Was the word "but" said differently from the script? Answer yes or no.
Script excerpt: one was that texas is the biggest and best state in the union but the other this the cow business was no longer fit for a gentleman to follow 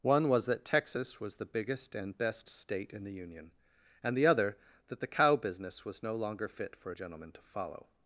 yes